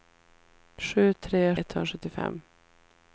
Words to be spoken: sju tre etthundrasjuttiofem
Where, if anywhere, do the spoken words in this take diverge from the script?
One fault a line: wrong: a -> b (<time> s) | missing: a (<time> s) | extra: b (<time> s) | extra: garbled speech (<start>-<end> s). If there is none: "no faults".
no faults